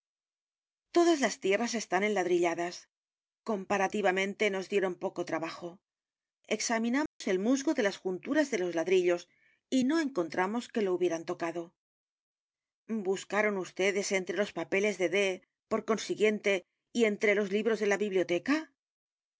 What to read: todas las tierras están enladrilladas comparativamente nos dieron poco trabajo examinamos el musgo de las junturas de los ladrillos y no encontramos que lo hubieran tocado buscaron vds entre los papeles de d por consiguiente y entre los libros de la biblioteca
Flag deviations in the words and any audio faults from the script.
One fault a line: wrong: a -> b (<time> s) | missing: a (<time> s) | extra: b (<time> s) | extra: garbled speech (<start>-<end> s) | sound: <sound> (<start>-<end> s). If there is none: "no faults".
sound: dropout (7.1-7.2 s)